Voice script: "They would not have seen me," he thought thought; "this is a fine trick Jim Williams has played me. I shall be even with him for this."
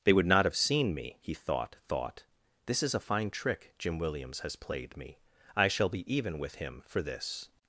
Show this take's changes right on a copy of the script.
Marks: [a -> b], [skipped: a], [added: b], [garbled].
"They would not have seen me," he thought thought; "this is a fine trick Jim Williams has played me. I shall be even with him for this."